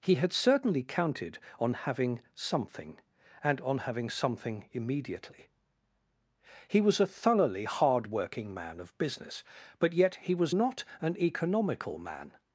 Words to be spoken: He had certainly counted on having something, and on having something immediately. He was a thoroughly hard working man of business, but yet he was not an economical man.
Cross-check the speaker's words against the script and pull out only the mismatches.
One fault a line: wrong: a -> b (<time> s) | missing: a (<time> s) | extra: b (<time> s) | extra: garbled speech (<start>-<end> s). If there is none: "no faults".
no faults